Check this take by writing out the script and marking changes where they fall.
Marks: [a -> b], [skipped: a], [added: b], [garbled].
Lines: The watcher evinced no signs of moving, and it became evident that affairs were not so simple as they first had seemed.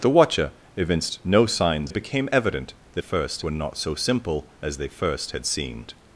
The watcher evinced no signs [skipped: of moving, and] it became evident that [affairs -> first] were not so simple as they first had seemed.